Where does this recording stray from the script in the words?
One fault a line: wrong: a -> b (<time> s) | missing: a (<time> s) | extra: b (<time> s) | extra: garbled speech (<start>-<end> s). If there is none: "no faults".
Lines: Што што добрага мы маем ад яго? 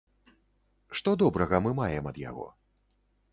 missing: што (1.1 s)